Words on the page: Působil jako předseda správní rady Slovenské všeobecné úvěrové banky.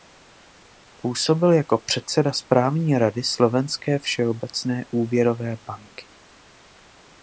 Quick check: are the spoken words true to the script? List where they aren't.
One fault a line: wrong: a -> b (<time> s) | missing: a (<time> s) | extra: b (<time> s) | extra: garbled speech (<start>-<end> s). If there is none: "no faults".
no faults